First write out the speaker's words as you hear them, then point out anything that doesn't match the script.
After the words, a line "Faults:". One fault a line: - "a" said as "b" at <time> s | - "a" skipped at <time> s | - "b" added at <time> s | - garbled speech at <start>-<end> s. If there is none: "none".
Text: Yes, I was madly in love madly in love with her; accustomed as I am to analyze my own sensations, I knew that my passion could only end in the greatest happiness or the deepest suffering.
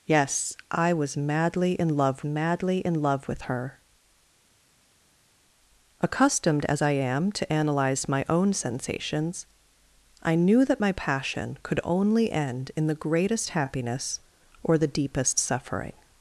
Yes, I was madly in love madly in love with her; accustomed as I am to analyze my own sensations, I knew that my passion could only end in the greatest happiness or the deepest suffering.
Faults:
none